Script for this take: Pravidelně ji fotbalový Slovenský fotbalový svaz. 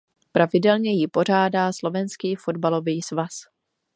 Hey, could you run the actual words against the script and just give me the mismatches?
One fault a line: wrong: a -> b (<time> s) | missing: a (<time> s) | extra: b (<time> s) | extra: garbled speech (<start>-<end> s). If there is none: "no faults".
wrong: fotbalový -> pořádá (1.0 s)